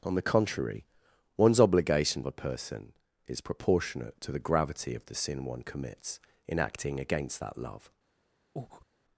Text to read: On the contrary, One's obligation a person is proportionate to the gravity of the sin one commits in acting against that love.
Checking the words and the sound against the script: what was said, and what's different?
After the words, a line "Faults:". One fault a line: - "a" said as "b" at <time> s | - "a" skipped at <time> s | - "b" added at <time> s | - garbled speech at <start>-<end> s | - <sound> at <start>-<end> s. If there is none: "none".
On the contrary, One's obligation a person is proportionate to the gravity of the sin one commits in acting against that love.
Faults:
- breath at 8.6-8.9 s